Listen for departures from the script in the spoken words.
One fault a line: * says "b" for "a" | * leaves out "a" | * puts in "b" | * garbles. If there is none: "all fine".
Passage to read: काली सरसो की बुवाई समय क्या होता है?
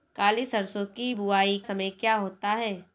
all fine